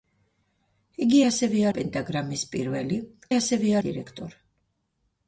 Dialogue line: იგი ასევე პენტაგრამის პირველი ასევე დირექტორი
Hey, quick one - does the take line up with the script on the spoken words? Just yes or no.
yes